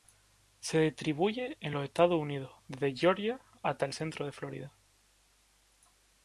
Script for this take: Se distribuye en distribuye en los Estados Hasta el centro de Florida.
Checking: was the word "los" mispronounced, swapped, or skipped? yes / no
yes